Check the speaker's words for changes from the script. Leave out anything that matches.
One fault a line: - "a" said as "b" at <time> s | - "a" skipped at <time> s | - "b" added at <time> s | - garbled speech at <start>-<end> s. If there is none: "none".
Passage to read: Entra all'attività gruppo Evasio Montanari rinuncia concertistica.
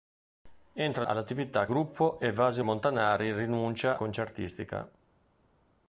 none